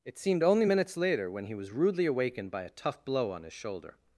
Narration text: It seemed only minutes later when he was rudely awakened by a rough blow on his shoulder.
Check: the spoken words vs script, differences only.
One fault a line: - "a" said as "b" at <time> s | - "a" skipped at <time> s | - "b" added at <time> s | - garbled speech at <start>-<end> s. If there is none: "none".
- "rough" said as "tough" at 2.7 s